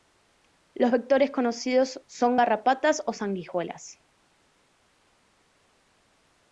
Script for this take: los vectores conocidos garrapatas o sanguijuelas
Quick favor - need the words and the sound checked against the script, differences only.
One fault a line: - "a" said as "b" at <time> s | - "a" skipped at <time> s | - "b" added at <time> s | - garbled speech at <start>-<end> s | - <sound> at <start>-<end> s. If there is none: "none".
- "son" added at 2.1 s